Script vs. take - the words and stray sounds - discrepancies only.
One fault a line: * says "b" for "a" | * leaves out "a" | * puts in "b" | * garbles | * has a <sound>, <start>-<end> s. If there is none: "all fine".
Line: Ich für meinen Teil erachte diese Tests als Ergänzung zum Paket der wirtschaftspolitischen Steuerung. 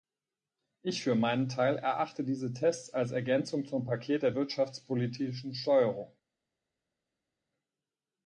all fine